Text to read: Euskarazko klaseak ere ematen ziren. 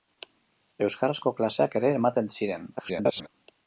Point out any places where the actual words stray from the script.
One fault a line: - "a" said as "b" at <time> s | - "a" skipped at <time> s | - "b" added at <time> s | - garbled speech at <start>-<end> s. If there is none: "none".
- garbled speech at 2.8-3.3 s